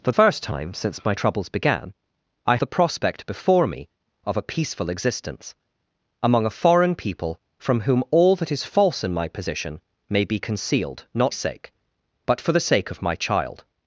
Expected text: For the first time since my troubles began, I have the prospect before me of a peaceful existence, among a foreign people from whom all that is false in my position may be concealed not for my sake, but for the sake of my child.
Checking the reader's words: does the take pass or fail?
fail